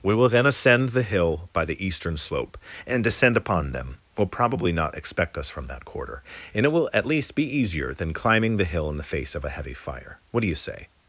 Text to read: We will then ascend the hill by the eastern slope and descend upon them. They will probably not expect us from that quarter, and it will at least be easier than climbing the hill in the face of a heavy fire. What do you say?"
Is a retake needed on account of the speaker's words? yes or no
yes